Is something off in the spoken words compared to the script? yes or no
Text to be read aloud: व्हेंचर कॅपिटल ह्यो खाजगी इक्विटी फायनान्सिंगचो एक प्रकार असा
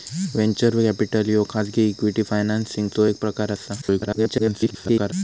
yes